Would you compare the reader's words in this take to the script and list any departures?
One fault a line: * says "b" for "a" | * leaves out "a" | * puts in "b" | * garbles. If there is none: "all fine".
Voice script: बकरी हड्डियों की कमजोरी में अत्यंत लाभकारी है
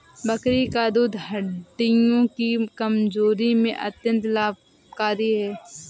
* puts in "का दूध"